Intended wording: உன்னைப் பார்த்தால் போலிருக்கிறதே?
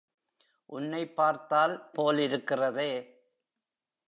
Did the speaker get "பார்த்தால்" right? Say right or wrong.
right